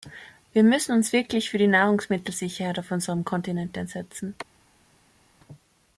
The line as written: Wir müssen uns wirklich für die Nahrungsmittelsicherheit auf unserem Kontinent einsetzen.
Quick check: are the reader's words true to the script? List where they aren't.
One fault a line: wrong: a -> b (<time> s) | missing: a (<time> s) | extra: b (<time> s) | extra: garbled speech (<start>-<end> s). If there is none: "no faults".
no faults